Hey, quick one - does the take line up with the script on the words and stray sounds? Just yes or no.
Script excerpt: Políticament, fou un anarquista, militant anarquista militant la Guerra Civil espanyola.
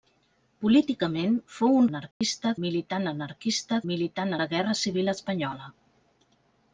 no